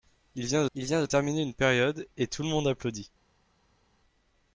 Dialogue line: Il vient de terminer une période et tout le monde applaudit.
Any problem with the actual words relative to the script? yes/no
yes